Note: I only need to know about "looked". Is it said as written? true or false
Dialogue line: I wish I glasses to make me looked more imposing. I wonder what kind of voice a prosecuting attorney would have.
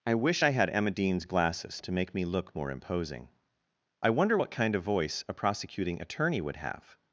false